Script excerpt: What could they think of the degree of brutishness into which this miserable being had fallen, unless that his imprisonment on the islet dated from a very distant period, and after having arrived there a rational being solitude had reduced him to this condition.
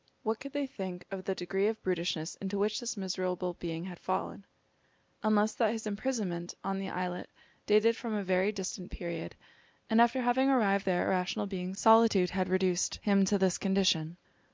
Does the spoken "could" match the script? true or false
true